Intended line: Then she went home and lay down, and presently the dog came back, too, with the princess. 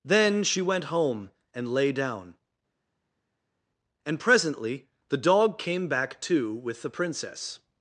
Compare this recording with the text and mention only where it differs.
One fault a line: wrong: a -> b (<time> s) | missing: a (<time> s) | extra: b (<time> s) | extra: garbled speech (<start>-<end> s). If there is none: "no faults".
no faults